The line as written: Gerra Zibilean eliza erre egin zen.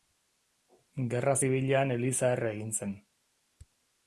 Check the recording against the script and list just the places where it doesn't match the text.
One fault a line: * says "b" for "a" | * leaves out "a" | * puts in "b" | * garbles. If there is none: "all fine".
all fine